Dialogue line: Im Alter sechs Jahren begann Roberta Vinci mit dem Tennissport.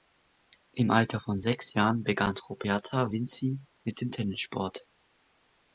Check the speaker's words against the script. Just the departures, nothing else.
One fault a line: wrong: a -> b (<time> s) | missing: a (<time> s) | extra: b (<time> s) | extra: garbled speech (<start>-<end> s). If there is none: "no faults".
extra: von (1.2 s)